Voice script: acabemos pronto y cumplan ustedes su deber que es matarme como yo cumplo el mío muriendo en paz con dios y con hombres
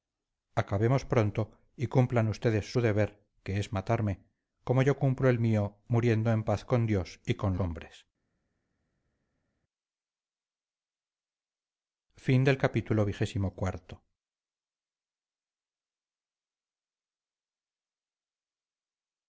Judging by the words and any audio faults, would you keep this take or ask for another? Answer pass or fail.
pass